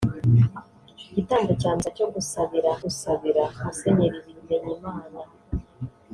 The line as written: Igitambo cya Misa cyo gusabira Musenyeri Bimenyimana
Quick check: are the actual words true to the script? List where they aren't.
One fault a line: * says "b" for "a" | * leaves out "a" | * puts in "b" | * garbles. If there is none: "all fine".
* puts in "gusabira"